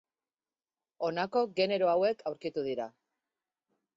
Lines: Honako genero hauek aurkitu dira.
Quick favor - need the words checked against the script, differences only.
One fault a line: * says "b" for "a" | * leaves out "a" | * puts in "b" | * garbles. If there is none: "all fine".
all fine